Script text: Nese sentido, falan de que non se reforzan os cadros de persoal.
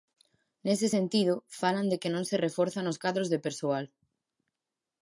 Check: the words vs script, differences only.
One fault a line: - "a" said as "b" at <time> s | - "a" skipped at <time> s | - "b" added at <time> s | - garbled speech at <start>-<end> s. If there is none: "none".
none